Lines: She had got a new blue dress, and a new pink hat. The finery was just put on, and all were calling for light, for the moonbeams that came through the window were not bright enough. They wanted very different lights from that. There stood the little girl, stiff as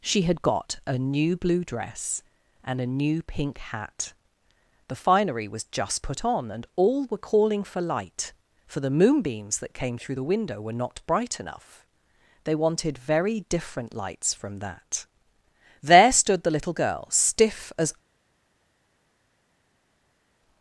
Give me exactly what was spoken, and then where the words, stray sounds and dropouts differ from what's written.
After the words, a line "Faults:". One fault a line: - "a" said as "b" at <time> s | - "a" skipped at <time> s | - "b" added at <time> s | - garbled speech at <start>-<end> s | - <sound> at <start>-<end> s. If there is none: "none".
She had got a new blue dress, and a new pink hat. The finery was just put on, and all were calling for light, for the moonbeams that came through the window were not bright enough. They wanted very different lights from that. There stood the little girl, stiff as
Faults:
none